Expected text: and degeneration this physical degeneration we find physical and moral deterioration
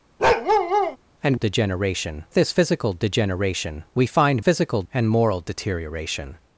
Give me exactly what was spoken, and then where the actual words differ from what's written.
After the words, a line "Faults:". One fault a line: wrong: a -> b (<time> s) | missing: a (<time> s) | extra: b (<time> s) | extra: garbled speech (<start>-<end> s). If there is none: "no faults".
and degeneration this physical degeneration we find physical and moral deterioration
Faults:
no faults